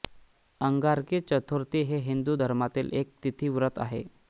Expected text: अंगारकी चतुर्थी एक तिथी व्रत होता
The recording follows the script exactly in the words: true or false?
false